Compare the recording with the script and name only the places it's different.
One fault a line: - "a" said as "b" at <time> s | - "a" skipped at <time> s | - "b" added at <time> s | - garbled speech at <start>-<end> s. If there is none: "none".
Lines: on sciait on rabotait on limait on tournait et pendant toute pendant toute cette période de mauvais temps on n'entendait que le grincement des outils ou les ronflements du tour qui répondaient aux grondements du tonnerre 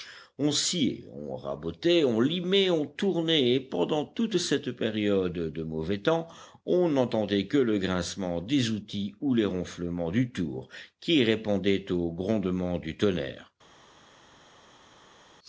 - "pendant toute" skipped at 4.4 s